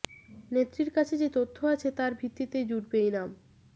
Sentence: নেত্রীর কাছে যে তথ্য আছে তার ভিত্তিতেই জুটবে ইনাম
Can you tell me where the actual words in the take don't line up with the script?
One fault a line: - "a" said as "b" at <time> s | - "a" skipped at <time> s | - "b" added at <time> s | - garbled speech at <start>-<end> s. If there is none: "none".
none